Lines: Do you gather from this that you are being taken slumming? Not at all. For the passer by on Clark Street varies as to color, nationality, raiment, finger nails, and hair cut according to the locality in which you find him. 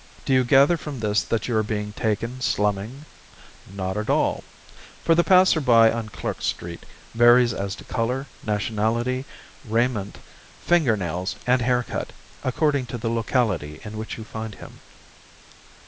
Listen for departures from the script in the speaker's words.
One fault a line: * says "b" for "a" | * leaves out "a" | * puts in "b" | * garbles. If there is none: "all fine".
all fine